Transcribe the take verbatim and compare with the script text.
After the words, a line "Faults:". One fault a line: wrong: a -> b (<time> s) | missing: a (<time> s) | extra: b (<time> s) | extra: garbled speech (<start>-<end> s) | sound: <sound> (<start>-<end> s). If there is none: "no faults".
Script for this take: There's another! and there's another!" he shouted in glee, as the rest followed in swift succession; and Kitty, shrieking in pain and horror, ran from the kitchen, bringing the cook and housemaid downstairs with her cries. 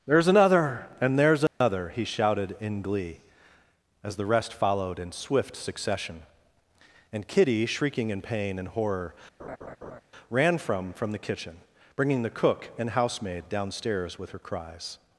There's another! and there's another!" he shouted in glee, as the rest followed in swift succession; and Kitty, shrieking in pain and horror, ran from from the kitchen, bringing the cook and housemaid downstairs with her cries.
Faults:
sound: dropout (1.5-1.6 s)
sound: laugh (9.4-10.0 s)
extra: from (10.9 s)